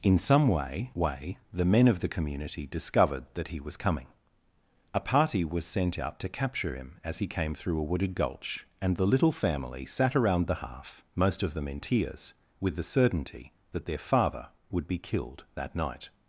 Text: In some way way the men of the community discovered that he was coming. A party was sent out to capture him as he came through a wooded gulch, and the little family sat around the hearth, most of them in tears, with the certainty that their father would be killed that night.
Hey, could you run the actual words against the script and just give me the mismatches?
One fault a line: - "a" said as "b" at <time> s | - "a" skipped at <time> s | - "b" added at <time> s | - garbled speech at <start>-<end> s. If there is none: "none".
none